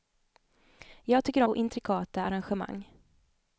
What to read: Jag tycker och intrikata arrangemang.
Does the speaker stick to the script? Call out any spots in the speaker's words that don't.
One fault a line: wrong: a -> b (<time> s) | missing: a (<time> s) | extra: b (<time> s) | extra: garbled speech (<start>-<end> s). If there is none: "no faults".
no faults